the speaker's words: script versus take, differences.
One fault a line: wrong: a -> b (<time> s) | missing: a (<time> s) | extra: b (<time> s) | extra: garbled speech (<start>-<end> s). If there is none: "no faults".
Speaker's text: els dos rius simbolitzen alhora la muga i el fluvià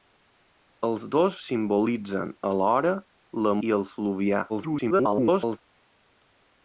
missing: rius (1.4 s)
missing: muga (3.5 s)
extra: garbled speech (4.5-5.6 s)